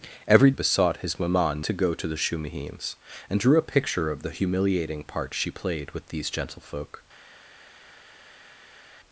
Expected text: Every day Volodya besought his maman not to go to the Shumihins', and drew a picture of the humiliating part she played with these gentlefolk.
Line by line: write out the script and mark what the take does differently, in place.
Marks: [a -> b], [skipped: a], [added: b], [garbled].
Every [skipped: day Volodya] besought his maman [skipped: not] to go to the Shumihins', and drew a picture of the humiliating part she played with these gentlefolk.